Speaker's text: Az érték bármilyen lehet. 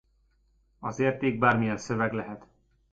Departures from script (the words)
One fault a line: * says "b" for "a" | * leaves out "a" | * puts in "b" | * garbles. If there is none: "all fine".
* puts in "szöveg"